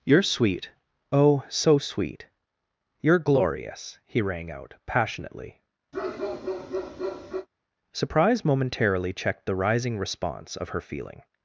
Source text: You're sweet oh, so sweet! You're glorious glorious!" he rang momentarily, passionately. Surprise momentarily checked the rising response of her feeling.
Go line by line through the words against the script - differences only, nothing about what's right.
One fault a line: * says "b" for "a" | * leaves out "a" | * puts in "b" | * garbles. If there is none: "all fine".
* leaves out "glorious"
* says "out" for "momentarily"